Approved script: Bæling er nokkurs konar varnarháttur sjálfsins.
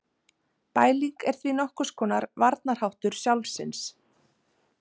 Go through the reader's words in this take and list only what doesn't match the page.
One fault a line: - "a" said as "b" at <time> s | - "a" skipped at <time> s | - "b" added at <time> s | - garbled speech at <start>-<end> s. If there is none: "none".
- "því" added at 1.4 s